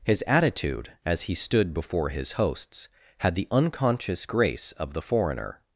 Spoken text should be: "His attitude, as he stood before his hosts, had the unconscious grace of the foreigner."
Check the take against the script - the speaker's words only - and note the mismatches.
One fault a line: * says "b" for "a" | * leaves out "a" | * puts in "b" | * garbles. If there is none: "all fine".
all fine